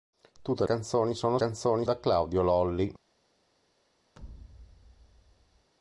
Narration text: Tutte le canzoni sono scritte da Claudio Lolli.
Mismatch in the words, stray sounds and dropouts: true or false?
true